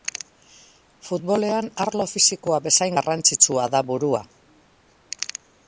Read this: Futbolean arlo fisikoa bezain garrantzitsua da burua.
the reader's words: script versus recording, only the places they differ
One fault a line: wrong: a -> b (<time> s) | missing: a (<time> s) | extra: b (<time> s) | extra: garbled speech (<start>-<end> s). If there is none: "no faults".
no faults